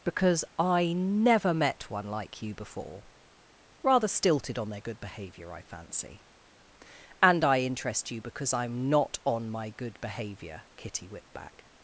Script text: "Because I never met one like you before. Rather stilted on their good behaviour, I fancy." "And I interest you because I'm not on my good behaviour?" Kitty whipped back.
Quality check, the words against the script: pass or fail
pass